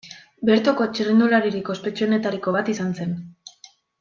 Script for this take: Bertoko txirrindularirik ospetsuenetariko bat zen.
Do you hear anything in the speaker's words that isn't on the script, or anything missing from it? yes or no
yes